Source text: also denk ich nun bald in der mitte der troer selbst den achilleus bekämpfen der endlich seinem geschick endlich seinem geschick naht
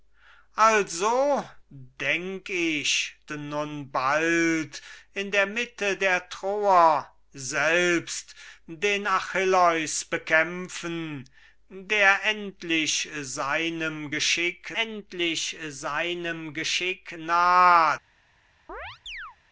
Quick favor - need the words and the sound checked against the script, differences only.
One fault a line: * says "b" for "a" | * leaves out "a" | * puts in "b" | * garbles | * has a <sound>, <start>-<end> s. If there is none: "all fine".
* has a chirp, 18.7-19.4 s